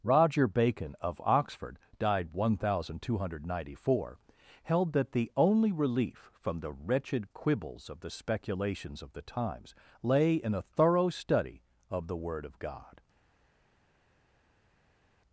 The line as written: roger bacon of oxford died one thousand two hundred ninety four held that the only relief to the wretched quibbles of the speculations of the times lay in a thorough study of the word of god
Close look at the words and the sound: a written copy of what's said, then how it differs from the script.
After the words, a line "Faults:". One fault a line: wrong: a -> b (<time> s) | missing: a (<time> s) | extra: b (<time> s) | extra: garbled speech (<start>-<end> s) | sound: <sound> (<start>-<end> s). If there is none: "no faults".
roger bacon of oxford died one thousand two hundred ninety four held that the only relief from the wretched quibbles of the speculations of the times lay in a thorough study of the word of god
Faults:
wrong: to -> from (6.3 s)